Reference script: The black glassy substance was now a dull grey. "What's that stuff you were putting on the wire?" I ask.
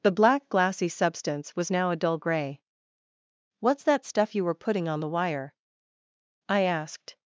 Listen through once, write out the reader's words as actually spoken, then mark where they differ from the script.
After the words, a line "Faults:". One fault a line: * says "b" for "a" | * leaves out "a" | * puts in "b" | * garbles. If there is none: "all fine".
The black glassy substance was now a dull grey. "What's that stuff you were putting on the wire?" I asked.
Faults:
* says "asked" for "ask"